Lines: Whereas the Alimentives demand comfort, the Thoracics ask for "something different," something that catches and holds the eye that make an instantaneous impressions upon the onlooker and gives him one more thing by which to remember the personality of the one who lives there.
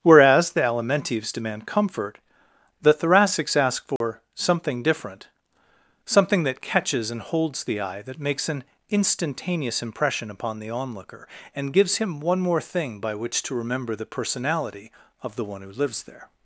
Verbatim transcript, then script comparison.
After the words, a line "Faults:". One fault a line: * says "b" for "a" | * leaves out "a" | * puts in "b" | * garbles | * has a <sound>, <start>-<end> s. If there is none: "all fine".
Whereas the Alimentives demand comfort, the Thoracics ask for "something different," something that catches and holds the eye that makes an instantaneous impression upon the onlooker and gives him one more thing by which to remember the personality of the one who lives there.
Faults:
* has a dropout, 4.0-4.0 s
* says "makes" for "make"
* says "impression" for "impressions"